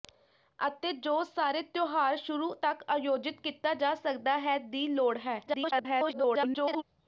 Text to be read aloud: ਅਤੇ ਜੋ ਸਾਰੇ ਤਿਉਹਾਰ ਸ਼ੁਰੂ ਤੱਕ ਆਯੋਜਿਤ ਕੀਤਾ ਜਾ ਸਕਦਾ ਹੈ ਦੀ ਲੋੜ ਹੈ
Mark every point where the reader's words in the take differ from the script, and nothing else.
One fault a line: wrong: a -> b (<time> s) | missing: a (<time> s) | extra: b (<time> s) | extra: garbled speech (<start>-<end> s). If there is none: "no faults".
extra: garbled speech (5.5-6.8 s)